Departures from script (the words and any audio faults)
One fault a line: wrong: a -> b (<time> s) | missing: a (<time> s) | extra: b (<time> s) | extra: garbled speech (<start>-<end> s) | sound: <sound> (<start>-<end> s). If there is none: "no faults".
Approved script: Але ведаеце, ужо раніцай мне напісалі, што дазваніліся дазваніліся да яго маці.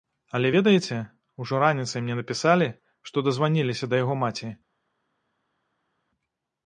missing: дазваніліся (3.9 s)